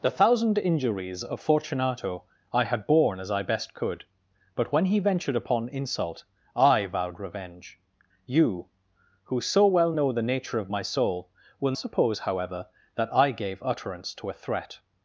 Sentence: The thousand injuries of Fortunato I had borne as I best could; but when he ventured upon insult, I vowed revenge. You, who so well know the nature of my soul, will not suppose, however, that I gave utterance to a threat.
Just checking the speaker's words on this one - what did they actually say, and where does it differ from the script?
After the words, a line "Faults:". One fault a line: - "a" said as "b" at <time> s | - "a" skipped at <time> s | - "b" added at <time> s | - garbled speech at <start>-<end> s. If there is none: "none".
The thousand injuries of Fortunato I had borne as I best could; but when he ventured upon insult, I vowed revenge. You, who so well know the nature of my soul, will suppose, however, that I gave utterance to a threat.
Faults:
- "not" skipped at 11.7 s